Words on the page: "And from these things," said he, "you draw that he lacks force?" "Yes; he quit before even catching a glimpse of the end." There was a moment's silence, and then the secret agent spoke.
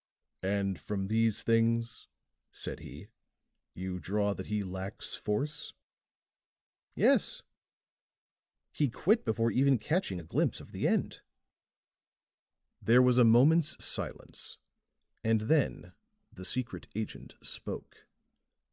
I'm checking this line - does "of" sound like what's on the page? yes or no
yes